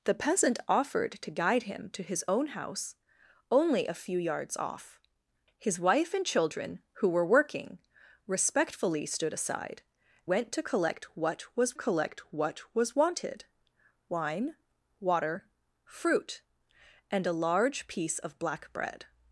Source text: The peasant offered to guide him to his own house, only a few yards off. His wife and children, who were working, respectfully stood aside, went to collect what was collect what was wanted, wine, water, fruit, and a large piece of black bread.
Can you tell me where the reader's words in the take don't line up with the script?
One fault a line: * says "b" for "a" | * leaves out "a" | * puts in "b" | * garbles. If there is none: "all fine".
all fine